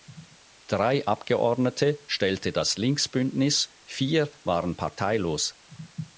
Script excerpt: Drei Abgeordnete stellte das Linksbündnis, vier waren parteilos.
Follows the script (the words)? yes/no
yes